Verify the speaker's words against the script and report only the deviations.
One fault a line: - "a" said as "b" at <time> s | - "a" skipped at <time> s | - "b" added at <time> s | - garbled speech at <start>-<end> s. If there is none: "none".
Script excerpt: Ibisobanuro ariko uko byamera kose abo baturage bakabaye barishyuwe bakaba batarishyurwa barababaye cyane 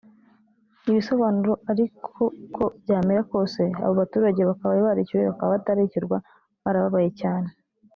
none